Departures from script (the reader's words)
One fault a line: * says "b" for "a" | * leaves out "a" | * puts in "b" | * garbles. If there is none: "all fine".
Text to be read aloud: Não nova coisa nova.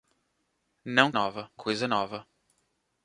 all fine